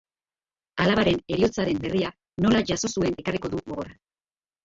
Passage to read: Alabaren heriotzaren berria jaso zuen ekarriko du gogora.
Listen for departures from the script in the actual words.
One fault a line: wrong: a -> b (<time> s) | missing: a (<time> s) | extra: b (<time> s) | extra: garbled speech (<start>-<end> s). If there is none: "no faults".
extra: nola (2.4 s)